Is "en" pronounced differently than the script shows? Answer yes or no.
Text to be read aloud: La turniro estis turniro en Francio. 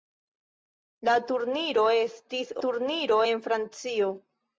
no